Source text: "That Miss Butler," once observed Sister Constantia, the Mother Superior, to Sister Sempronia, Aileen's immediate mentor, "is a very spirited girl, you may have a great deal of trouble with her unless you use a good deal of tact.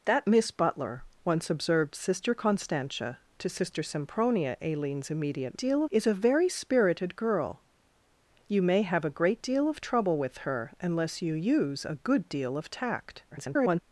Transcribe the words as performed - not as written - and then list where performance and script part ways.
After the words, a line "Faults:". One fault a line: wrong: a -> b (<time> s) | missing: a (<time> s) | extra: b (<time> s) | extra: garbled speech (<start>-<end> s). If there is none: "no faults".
"That Miss Butler," once observed Sister Constantia, to Sister Sempronia, Aileen's immediate deal, "is a very spirited girl, you may have a great deal of trouble with her unless you use a good deal of tact. [garbled]
Faults:
missing: the Mother Superior (3.2 s)
wrong: mentor -> deal (5.5 s)
extra: garbled speech (13.3-13.8 s)